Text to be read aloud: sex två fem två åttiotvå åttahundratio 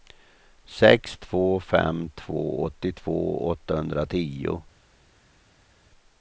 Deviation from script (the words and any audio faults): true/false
false